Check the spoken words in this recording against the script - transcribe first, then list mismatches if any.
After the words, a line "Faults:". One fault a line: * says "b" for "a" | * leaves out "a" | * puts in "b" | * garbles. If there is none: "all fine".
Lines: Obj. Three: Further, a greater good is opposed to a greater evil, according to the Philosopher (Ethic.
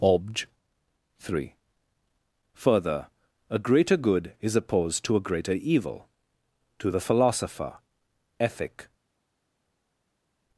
Obj. Three: Further, a greater good is opposed to a greater evil, to the Philosopher (Ethic.
Faults:
* leaves out "according"